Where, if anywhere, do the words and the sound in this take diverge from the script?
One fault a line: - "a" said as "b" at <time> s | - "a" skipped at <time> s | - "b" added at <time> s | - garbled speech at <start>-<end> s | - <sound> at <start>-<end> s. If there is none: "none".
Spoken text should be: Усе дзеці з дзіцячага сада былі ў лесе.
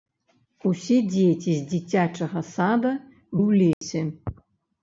- "былі" skipped at 2.9 s
- dropout at 3.7-3.8 s